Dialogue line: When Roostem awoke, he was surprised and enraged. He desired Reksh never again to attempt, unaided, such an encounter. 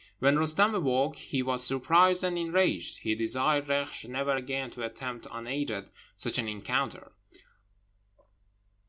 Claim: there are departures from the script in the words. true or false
false